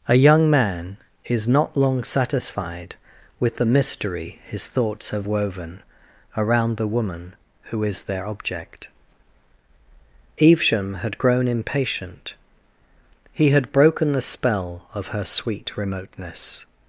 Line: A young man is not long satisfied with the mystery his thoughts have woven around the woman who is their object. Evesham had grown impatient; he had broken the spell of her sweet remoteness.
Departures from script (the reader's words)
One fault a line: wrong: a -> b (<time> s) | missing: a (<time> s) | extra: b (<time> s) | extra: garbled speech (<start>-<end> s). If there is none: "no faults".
no faults